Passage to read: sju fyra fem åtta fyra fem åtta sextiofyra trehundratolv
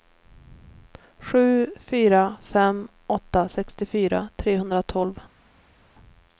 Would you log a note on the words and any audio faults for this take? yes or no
yes